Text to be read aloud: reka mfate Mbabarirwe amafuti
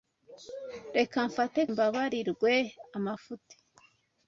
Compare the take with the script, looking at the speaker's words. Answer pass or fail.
pass